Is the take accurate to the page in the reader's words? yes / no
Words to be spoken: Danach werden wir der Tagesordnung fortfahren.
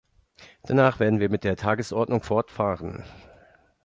no